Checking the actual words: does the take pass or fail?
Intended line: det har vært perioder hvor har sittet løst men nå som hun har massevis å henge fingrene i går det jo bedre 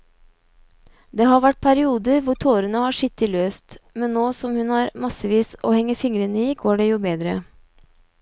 fail